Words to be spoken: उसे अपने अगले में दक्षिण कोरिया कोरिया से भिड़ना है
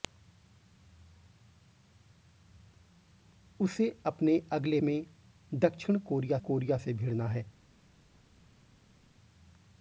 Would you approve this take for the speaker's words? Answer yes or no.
yes